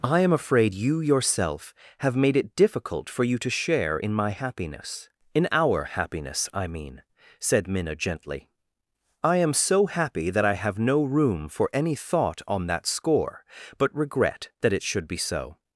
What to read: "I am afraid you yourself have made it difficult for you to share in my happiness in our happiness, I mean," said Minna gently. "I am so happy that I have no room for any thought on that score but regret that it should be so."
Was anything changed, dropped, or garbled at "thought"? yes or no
no